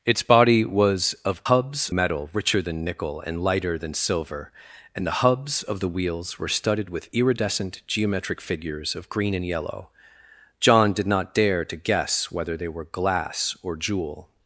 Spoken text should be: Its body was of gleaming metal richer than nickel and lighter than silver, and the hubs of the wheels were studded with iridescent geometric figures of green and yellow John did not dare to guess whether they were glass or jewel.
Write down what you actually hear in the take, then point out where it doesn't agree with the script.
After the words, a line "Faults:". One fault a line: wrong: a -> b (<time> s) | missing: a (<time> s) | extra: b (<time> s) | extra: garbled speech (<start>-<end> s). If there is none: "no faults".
Its body was of hubs metal richer than nickel and lighter than silver, and the hubs of the wheels were studded with iridescent geometric figures of green and yellow John did not dare to guess whether they were glass or jewel.
Faults:
wrong: gleaming -> hubs (1.5 s)